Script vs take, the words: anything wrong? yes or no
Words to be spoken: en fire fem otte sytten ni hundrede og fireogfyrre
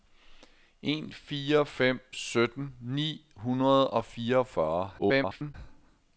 yes